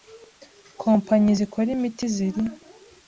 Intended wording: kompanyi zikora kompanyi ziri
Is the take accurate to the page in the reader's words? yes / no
no